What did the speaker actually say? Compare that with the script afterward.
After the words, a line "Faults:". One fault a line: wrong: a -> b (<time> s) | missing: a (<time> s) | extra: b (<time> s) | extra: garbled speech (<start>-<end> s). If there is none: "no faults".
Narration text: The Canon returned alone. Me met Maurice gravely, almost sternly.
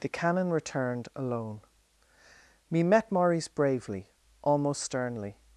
The Canon returned alone. Me met Maurice bravely, almost sternly.
Faults:
wrong: gravely -> bravely (3.5 s)